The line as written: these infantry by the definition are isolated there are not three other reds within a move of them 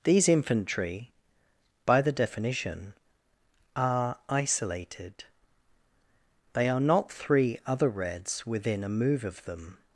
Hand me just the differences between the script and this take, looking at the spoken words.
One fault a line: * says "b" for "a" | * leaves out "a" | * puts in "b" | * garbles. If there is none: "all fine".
* says "they" for "there"